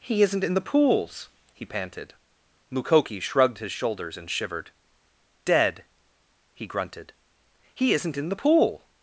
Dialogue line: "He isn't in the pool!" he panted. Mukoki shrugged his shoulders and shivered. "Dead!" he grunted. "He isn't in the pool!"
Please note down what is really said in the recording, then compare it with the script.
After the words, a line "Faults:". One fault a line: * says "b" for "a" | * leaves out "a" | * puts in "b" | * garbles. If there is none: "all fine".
"He isn't in the pools!" he panted. Mukoki shrugged his shoulders and shivered. "Dead!" he grunted. "He isn't in the pool!"
Faults:
* says "pools" for "pool"